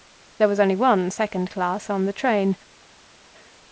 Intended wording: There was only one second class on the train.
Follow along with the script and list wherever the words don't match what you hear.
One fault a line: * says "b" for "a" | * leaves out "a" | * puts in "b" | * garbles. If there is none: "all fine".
all fine